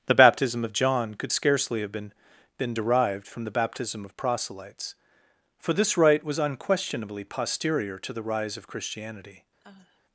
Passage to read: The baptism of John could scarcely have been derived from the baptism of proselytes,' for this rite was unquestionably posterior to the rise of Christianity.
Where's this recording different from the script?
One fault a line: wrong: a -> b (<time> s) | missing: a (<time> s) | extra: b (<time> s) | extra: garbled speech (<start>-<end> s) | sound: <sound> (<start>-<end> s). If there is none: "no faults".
extra: been (2.6 s)
sound: sigh (9.6-10.0 s)